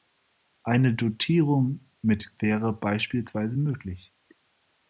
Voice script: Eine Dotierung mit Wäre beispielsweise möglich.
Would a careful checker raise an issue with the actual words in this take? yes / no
no